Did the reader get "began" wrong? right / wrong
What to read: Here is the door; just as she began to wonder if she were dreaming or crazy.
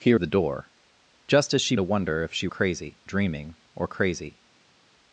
wrong